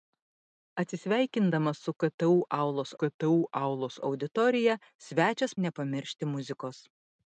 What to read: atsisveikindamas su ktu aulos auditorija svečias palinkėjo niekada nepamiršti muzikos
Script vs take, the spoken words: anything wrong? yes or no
yes